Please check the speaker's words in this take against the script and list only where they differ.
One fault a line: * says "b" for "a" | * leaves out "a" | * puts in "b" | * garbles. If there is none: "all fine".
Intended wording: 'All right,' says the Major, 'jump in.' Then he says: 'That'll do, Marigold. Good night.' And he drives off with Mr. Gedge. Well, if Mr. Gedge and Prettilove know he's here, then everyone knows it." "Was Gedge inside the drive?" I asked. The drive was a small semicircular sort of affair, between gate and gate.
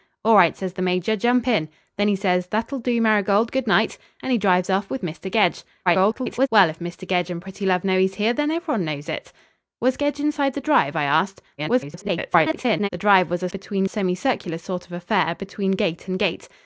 * garbles
* garbles
* says "between" for "small"